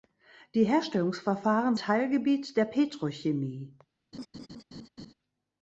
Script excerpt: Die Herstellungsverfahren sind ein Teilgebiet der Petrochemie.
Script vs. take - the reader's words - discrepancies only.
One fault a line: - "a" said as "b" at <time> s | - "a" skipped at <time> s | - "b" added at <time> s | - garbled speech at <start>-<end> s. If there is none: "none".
- "sind ein" skipped at 1.8 s